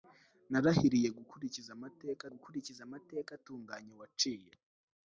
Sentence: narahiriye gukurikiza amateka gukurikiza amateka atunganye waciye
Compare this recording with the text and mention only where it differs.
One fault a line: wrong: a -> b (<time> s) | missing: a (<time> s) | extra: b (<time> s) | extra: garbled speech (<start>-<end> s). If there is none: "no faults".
no faults